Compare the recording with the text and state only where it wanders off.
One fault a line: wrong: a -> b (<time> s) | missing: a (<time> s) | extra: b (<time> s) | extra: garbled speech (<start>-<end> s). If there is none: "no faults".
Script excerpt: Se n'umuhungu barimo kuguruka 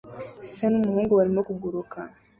no faults